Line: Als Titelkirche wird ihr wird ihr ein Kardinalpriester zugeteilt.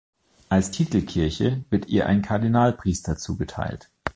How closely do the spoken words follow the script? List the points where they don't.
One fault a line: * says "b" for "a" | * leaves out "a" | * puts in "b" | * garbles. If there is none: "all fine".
* leaves out "wird ihr"